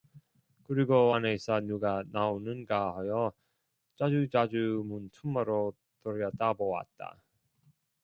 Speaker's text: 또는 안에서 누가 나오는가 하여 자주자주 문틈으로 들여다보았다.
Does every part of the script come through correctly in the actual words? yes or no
no